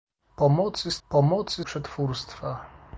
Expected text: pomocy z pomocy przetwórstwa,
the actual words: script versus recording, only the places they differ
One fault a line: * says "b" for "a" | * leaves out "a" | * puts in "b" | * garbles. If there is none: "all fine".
all fine